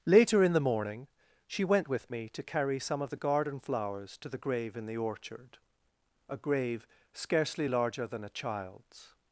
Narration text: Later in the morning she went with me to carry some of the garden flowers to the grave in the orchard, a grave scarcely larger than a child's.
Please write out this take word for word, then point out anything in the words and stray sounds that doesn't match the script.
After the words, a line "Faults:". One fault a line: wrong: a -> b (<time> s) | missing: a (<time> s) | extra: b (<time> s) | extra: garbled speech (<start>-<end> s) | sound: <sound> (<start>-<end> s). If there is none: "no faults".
Later in the morning she went with me to carry some of the garden flowers to the grave in the orchard, a grave scarcely larger than a child's.
Faults:
no faults